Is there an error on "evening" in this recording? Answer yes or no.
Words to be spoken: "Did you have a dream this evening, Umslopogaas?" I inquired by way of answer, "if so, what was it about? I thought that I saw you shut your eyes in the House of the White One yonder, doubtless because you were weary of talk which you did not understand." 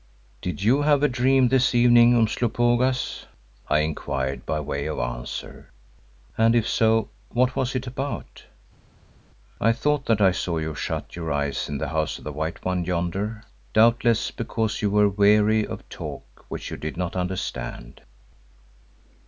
no